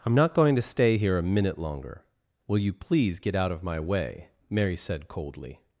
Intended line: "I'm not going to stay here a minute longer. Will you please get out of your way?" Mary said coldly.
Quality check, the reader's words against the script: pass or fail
fail